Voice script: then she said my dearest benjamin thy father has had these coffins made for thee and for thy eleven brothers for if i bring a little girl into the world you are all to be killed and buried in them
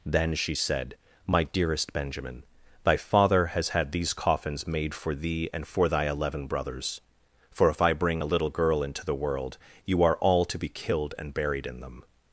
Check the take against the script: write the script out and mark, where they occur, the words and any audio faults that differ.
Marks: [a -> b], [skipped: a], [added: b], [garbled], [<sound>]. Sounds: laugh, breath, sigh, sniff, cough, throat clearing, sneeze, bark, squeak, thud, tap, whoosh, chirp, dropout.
then she said my dearest benjamin thy father has had these coffins made for thee and for thy eleven brothers for if i bring a little girl into the world you are all to be killed and buried in them